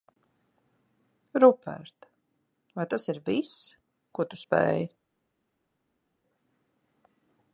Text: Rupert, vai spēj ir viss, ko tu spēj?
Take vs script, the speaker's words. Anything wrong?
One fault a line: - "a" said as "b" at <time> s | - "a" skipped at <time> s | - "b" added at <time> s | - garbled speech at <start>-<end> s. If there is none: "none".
- "spēj" said as "tas" at 2.9 s